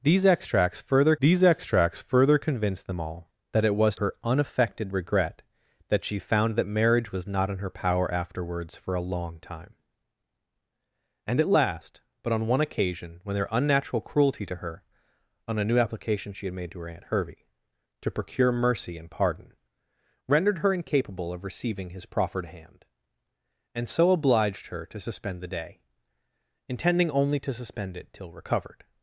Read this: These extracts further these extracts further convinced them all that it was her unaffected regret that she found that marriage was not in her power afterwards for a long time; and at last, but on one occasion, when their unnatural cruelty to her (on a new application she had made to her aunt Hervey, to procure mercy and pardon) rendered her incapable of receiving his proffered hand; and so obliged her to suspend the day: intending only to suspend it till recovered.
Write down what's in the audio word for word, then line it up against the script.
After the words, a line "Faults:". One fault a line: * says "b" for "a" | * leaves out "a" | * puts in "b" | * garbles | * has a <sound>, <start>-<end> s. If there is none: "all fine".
These extracts further these extracts further convinced them all that it was her unaffected regret that she found that marriage was not in her power afterwards for a long time; and at last, but on one occasion, when their unnatural cruelty to her (on a new application she had made to her aunt Hervey, to procure mercy and pardon) rendered her incapable of receiving his proffered hand; and so obliged her to suspend the day: intending only to suspend it till recovered.
Faults:
all fine